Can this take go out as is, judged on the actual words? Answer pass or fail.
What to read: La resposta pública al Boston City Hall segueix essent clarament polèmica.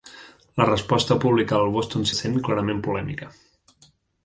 fail